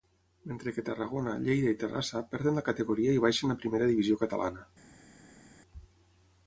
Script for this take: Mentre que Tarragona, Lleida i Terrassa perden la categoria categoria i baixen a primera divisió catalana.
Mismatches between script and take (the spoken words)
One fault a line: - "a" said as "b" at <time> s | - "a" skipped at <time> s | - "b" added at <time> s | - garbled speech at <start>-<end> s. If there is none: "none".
- "categoria" skipped at 3.1 s